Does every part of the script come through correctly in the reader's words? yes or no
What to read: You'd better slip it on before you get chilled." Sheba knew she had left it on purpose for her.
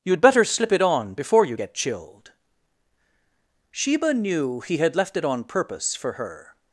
no